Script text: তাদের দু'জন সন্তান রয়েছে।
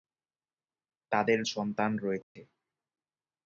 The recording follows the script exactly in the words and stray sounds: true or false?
false